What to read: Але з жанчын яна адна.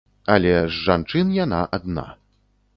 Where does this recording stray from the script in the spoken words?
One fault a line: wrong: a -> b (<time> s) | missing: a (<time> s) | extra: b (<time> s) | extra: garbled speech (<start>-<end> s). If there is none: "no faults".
no faults